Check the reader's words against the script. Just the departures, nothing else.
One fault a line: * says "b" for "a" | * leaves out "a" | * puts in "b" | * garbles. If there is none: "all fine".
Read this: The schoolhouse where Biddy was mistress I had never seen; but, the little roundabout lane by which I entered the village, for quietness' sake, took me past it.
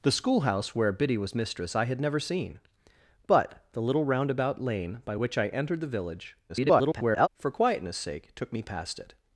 * garbles